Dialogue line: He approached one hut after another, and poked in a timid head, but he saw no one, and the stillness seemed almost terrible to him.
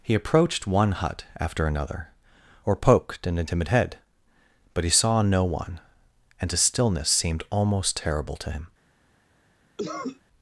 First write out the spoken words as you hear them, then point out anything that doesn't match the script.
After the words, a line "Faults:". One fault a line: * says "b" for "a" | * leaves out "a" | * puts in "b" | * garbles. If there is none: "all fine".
He approached one hut after another, or poked in a timid head, but he saw no one, and a stillness seemed almost terrible to him.
Faults:
* says "or" for "and"
* says "a" for "the"